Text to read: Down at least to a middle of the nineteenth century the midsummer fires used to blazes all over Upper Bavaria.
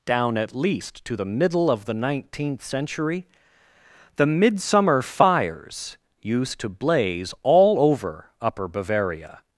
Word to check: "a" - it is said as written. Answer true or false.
false